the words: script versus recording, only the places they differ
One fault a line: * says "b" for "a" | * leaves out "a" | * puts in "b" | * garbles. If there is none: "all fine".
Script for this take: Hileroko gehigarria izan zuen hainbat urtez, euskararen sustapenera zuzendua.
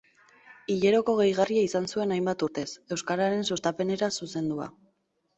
all fine